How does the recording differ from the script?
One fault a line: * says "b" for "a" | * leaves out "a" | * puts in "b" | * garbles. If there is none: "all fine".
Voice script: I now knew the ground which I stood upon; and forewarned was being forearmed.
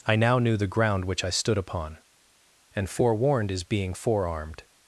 * says "is" for "was"